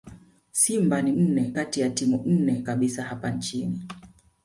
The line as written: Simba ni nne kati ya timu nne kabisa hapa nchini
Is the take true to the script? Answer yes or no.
yes